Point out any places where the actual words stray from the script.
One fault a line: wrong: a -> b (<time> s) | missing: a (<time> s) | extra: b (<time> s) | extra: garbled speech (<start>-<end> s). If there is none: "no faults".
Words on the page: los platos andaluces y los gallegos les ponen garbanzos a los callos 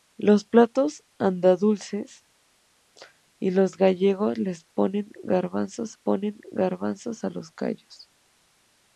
extra: ponen garbanzos (5.9 s)